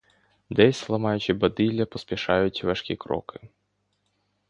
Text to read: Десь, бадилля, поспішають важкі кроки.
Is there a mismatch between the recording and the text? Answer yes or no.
yes